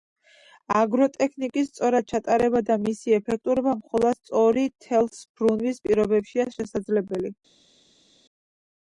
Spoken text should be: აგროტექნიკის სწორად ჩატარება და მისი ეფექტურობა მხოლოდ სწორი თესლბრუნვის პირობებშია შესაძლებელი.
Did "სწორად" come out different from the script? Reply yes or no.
no